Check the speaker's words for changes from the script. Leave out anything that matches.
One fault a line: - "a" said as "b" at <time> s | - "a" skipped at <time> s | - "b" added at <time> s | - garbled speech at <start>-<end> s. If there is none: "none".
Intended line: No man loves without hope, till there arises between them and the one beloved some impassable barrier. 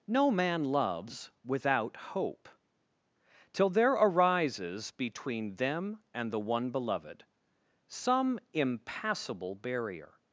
none